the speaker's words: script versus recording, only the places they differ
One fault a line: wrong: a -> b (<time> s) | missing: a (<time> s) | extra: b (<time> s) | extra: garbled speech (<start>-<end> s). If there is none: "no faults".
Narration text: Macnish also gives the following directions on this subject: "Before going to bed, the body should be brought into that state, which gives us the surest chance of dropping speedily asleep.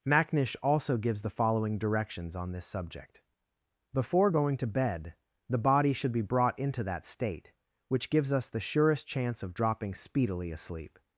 no faults